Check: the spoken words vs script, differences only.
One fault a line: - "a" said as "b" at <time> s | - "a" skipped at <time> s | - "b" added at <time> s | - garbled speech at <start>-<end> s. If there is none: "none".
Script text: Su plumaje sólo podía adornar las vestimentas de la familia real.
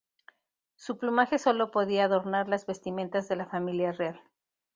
none